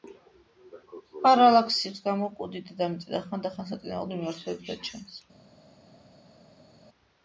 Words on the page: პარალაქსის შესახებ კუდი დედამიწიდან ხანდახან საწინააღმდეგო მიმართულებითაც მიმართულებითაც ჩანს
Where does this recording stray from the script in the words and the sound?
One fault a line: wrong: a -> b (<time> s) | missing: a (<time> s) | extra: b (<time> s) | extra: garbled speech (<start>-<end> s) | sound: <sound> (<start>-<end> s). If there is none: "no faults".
wrong: შესახებ -> გამო (2.1 s)
missing: მიმართულებითაც (4.9 s)